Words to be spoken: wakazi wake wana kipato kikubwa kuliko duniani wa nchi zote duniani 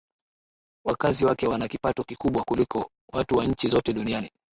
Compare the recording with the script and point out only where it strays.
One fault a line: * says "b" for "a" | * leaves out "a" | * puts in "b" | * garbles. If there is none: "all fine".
* says "watu" for "duniani"